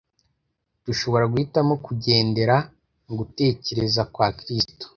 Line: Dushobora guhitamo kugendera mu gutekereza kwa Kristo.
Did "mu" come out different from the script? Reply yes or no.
no